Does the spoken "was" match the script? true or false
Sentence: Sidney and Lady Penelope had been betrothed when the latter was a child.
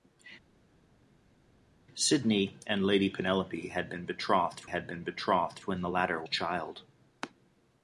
false